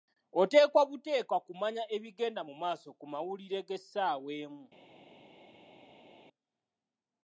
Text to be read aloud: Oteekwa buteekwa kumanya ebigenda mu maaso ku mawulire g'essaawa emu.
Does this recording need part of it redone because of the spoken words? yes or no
no